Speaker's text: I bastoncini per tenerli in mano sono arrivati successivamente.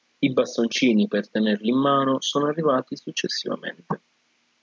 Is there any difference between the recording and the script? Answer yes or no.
no